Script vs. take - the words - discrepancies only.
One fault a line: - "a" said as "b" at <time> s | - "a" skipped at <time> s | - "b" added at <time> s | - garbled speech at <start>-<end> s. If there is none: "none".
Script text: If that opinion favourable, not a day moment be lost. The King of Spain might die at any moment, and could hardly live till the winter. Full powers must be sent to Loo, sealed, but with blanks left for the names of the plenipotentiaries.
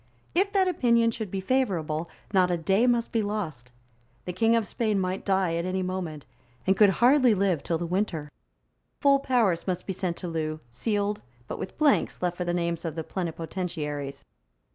- "should be" added at 1.1 s
- "moment" said as "must" at 2.9 s